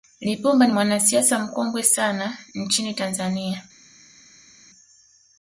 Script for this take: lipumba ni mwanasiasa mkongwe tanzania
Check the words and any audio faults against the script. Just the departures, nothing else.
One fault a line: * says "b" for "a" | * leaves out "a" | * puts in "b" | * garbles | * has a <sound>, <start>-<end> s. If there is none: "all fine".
* puts in "sana nchini"